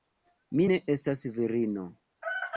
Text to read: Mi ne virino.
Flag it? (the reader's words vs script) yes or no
yes